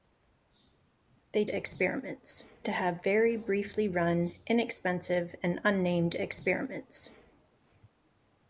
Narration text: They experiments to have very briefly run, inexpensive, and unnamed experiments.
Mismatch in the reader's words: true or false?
false